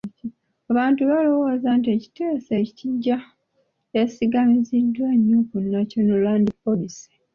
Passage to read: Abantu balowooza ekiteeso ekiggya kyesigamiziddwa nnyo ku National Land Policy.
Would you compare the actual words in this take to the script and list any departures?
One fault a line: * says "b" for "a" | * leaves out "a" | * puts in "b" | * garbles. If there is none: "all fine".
* puts in "nti"